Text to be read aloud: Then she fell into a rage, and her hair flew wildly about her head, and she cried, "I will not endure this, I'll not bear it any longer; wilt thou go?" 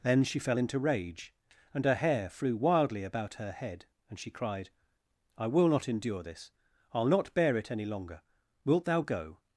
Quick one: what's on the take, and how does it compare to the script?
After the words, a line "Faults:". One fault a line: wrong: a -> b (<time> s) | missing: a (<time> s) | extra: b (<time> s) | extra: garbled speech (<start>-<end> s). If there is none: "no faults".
Then she fell into rage, and her hair flew wildly about her head, and she cried, "I will not endure this, I'll not bear it any longer; wilt thou go?"
Faults:
missing: a (0.8 s)